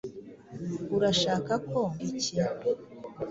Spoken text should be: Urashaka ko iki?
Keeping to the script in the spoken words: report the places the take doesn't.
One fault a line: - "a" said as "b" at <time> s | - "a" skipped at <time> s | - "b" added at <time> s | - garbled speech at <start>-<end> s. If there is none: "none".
none